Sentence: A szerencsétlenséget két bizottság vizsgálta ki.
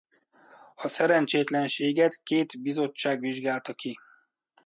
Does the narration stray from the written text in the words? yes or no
no